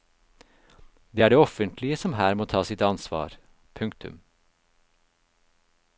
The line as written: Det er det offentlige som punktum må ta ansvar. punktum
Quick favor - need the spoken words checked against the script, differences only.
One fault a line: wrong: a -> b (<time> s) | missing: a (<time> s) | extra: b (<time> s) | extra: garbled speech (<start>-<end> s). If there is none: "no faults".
wrong: punktum -> her (2.2 s)
extra: sitt (2.6 s)